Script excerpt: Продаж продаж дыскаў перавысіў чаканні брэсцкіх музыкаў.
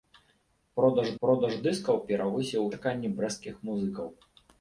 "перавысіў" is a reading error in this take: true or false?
false